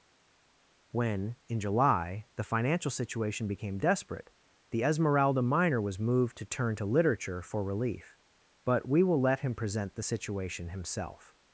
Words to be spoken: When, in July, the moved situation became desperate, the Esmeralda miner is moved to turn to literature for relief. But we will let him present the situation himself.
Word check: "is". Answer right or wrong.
wrong